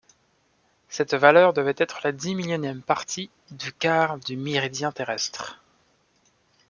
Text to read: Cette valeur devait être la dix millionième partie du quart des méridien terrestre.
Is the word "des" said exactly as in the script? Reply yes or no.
no